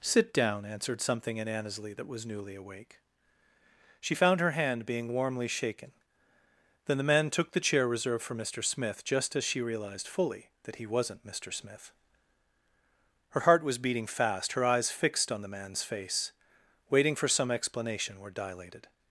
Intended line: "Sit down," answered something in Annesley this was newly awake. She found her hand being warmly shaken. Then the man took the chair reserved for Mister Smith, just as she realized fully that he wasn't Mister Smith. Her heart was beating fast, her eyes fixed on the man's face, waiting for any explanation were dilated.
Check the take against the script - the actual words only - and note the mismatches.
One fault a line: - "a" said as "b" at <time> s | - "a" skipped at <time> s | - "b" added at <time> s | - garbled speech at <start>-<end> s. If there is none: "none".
- "this" said as "that" at 1.9 s
- "any" said as "some" at 17.3 s